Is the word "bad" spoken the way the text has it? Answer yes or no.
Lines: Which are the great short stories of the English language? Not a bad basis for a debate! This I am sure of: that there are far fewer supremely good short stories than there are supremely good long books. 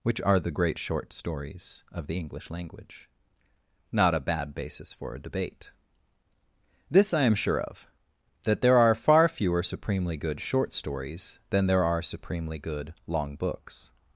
yes